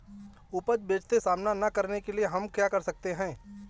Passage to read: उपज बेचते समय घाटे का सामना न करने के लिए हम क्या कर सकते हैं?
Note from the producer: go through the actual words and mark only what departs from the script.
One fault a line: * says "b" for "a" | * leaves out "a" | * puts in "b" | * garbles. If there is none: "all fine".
* leaves out "समय घाटे का"